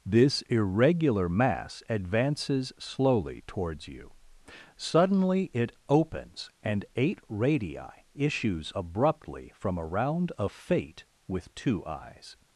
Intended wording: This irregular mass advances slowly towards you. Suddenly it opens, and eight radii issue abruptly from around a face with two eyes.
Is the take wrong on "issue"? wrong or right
wrong